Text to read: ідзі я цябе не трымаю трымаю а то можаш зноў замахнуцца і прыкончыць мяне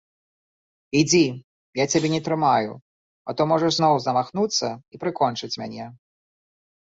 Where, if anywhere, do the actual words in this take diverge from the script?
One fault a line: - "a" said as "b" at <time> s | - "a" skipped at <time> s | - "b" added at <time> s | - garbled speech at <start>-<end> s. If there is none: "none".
- "трымаю" skipped at 2.7 s